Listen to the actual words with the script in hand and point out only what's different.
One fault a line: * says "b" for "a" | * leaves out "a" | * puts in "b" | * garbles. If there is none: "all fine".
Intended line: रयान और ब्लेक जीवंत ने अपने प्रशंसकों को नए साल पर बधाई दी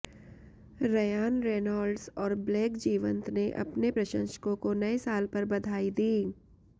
* puts in "रेनॉल्ड्स"